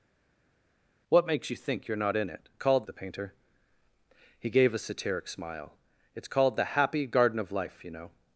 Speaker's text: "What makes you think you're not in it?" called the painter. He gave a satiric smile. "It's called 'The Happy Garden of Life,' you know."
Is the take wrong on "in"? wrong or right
right